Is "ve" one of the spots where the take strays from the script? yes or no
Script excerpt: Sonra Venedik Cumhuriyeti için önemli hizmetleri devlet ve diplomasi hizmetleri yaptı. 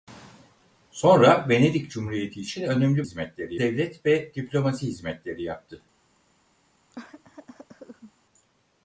no